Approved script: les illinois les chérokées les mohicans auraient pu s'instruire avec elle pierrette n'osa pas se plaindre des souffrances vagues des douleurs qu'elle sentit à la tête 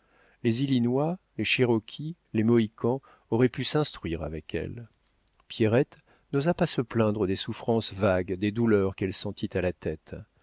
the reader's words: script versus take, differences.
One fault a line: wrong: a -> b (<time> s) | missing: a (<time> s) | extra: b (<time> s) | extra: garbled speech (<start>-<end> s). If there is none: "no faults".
no faults